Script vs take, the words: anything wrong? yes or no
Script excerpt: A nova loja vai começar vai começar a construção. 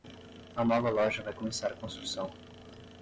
yes